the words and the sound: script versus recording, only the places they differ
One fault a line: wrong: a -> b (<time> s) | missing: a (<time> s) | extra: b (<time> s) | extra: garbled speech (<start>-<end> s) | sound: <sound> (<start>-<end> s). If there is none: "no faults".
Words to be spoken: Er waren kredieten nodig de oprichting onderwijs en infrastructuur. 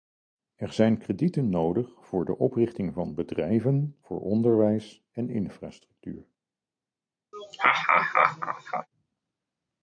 wrong: waren -> zijn (0.7 s)
extra: voor (2.0 s)
extra: van bedrijven voor (2.9 s)
sound: laugh (7.3-8.9 s)